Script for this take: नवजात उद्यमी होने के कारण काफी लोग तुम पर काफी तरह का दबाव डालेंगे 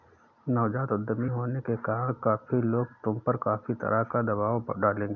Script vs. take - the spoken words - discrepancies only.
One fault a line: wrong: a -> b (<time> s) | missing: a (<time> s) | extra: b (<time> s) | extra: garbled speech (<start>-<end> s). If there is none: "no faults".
no faults